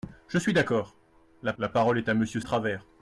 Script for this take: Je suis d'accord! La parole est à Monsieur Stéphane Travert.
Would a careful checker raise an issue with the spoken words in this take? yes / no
yes